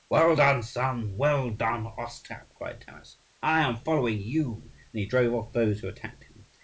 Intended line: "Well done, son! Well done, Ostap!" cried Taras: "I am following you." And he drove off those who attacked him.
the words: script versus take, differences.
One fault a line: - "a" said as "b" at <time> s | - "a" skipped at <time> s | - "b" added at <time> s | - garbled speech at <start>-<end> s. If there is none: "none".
none